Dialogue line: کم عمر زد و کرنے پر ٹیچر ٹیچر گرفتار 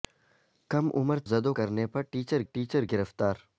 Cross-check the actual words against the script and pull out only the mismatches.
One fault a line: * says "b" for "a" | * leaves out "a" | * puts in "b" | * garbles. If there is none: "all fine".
all fine